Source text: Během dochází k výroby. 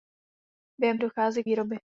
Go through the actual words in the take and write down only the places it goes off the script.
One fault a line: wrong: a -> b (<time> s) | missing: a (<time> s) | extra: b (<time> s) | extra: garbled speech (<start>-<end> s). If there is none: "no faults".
no faults